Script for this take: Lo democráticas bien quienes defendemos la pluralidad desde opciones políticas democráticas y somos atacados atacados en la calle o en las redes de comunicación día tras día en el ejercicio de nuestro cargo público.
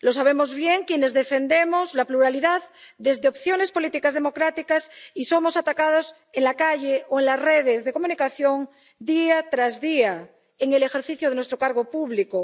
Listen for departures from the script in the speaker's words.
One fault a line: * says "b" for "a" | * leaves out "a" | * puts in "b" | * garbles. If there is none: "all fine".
* says "sabemos" for "democráticas"
* leaves out "atacados"